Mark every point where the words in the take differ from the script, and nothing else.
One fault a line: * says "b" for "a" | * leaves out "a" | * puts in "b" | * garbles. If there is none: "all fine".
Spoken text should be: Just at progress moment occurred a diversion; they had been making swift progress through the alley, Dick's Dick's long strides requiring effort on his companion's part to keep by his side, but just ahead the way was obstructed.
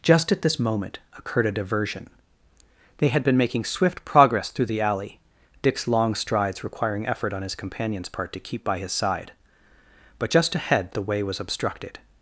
* says "this" for "progress"
* leaves out "Dick's"